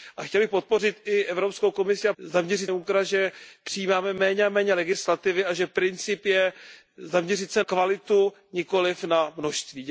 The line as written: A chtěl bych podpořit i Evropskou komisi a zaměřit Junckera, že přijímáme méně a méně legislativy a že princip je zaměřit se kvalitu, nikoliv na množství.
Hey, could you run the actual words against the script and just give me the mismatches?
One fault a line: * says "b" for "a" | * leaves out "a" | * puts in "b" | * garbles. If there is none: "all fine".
all fine